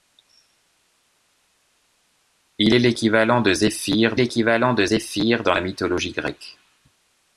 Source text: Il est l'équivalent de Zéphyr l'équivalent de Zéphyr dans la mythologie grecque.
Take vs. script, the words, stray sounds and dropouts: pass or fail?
pass